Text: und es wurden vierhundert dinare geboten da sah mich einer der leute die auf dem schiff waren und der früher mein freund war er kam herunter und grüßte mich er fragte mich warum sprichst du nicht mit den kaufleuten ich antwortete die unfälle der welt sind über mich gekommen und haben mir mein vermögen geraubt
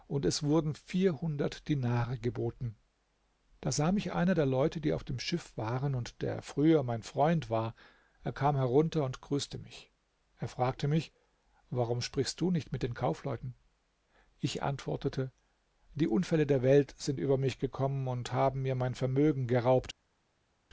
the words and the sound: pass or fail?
pass